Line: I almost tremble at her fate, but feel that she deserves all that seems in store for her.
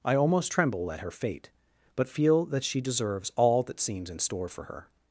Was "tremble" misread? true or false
false